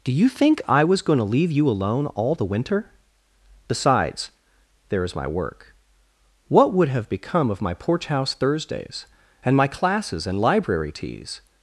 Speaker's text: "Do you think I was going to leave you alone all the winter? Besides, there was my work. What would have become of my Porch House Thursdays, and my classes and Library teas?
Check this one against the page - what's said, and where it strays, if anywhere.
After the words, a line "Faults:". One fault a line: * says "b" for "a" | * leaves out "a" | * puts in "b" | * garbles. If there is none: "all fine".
"Do you think I was going to leave you alone all the winter? Besides, there is my work. What would have become of my Porch House Thursdays, and my classes and Library teas?
Faults:
* says "is" for "was"